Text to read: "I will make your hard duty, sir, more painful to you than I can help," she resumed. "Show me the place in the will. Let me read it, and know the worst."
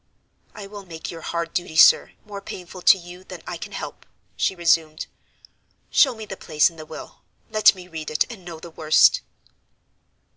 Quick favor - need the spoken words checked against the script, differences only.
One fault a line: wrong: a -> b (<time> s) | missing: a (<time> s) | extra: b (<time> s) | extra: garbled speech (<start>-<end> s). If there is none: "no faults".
no faults